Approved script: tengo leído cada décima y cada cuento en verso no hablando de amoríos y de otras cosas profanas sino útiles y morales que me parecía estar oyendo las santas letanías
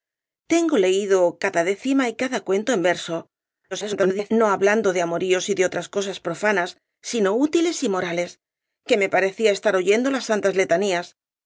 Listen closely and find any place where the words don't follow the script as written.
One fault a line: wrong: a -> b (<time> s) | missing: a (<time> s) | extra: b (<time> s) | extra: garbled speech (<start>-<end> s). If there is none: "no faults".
extra: garbled speech (3.7-4.3 s)